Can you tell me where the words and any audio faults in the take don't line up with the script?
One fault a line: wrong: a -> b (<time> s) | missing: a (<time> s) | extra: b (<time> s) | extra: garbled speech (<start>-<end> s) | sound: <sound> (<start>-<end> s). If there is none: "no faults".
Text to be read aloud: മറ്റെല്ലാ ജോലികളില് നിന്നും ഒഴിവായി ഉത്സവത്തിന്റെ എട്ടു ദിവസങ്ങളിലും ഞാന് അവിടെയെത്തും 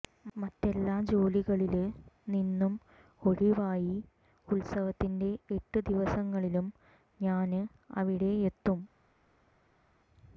no faults